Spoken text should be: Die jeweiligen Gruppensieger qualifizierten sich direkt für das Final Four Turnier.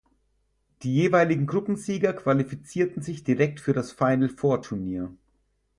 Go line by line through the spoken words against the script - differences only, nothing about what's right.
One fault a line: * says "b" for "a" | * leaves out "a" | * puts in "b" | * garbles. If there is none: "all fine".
all fine